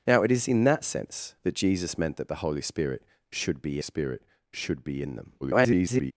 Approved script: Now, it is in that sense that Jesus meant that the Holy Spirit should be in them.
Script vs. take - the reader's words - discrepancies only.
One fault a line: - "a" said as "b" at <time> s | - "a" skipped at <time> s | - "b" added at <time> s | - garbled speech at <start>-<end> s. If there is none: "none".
- "Spirit should be" added at 3.8 s
- garbled speech at 5.4-6.1 s